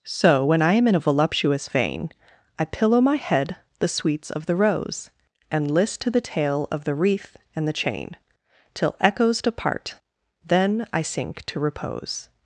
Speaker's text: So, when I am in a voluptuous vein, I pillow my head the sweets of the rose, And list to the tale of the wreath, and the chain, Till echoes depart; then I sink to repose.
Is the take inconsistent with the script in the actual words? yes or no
no